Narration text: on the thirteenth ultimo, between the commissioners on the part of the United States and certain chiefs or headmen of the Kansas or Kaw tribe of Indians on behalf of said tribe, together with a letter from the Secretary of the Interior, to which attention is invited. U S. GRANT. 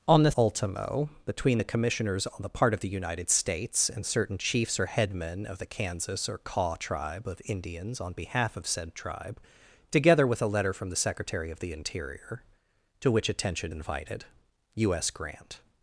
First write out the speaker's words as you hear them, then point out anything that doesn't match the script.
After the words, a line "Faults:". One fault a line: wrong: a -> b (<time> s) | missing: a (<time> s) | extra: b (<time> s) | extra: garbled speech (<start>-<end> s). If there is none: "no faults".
on the ultimo, between the commissioners on the part of the United States and certain chiefs or headmen of the Kansas or Kaw tribe of Indians on behalf of said tribe, together with a letter from the Secretary of the Interior, to which attention invited. U S. GRANT.
Faults:
missing: thirteenth (0.3 s)
missing: is (13.7 s)